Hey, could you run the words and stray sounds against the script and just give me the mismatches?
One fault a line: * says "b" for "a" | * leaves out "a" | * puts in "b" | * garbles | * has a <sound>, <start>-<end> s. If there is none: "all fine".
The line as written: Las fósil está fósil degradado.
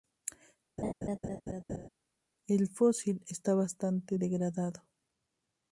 * has a laugh, 0.8-1.9 s
* says "El" for "Las"
* says "bastante" for "fósil"